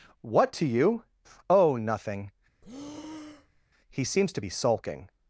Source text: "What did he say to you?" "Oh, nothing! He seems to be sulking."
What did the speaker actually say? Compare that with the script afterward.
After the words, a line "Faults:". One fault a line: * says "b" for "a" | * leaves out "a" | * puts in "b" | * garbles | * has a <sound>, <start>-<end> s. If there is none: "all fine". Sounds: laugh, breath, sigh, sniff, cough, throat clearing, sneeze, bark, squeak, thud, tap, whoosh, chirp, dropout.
"What to you?" "Oh, nothing! He seems to be sulking."
Faults:
* leaves out "did he say"
* has a breath, 2.6-3.6 s